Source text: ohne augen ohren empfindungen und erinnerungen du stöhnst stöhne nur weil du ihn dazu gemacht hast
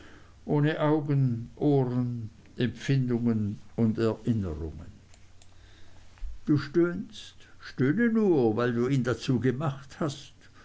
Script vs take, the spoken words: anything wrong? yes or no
no